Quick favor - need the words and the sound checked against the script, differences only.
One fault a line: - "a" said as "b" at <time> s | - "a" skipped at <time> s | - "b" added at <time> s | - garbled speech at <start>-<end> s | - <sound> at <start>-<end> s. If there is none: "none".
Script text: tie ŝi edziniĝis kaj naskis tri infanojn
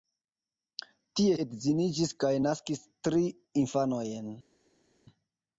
- "ŝi" skipped at 1.4 s